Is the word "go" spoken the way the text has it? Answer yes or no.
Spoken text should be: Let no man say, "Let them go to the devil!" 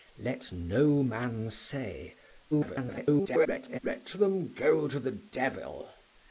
yes